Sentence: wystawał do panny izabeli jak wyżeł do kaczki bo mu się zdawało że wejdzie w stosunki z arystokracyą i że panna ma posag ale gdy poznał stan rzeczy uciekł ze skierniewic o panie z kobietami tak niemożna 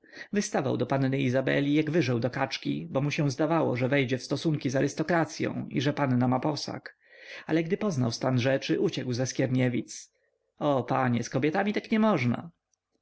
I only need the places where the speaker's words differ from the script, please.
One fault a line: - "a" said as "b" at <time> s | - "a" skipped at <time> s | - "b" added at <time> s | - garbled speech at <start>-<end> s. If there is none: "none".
none